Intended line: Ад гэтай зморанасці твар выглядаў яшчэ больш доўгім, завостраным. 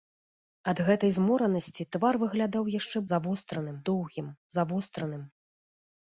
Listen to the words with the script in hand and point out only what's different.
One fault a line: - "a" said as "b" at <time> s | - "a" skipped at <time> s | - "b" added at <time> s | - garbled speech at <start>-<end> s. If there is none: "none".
- "больш" said as "завостраным" at 3.2 s